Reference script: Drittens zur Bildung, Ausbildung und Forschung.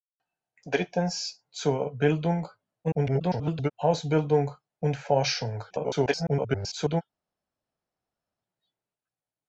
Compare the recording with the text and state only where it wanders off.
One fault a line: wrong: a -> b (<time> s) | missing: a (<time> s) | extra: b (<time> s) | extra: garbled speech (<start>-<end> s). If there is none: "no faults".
extra: garbled speech (2.8-3.7 s)
extra: garbled speech (5.7-7.0 s)